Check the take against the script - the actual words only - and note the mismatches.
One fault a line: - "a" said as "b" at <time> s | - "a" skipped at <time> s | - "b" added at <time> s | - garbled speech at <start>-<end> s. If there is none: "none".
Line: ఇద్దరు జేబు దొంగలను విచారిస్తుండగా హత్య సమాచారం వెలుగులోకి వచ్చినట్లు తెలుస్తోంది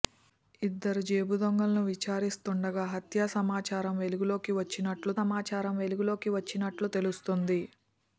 - "సమాచారం వెలుగులోకి వచ్చినట్లు" added at 5.2 s